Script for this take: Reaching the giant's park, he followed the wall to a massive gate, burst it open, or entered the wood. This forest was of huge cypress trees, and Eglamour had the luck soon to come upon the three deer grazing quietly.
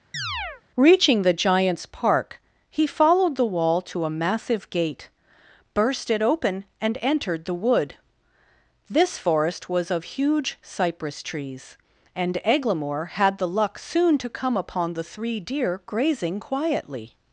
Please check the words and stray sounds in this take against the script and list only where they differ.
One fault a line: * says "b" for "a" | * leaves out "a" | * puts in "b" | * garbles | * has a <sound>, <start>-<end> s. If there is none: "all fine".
* has a chirp, 0.1-0.6 s
* says "and" for "or"